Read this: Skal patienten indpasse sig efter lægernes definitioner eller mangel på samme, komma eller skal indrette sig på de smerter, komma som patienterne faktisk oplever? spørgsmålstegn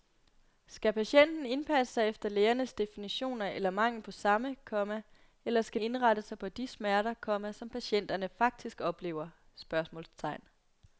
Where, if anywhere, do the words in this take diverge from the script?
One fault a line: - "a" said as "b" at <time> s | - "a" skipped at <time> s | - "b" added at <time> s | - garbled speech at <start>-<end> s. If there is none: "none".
none